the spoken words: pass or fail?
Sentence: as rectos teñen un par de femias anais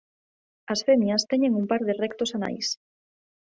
fail